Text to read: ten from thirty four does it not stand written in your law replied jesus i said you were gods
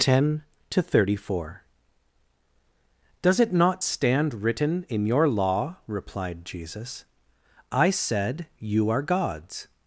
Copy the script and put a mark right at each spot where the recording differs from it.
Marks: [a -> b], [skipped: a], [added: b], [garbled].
ten [from -> to] thirty four does it not stand written in your law replied jesus i said you [were -> are] gods